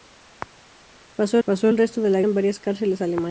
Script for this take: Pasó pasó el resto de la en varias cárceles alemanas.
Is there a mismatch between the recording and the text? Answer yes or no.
no